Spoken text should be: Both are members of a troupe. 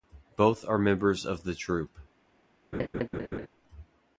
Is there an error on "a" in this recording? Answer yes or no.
yes